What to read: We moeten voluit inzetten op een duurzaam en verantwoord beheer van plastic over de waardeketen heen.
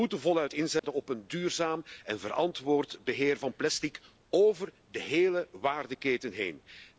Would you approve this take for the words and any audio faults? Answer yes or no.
no